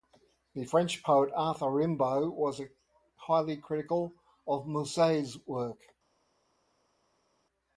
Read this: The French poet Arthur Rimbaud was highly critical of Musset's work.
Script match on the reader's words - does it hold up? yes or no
yes